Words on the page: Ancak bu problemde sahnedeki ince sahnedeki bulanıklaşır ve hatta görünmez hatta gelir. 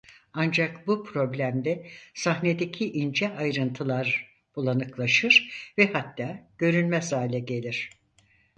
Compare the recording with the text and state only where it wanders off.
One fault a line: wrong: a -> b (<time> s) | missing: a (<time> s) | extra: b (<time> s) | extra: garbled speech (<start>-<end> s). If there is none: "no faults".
wrong: sahnedeki -> ayrıntılar (3.4 s)
wrong: hatta -> hale (7.1 s)